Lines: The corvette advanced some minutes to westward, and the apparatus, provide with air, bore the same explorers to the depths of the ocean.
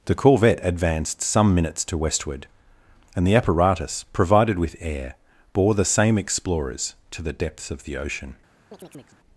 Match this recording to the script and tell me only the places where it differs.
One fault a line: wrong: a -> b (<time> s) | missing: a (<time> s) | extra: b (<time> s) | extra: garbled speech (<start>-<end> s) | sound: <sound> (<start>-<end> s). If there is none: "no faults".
wrong: provide -> provided (4.1 s)
sound: chirp (8.7-9.2 s)